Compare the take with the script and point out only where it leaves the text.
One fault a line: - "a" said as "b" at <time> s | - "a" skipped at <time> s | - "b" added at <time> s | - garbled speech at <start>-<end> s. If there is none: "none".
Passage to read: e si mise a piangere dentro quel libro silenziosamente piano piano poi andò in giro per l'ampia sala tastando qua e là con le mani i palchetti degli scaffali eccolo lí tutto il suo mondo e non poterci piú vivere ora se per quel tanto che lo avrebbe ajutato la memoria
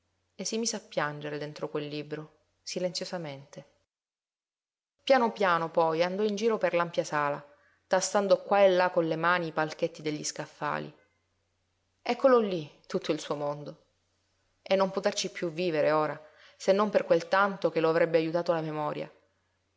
- "non" added at 16.7 s